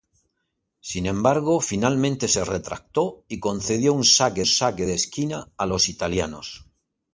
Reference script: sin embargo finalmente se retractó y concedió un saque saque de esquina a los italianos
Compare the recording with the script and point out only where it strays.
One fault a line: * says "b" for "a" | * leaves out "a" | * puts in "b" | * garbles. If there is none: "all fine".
all fine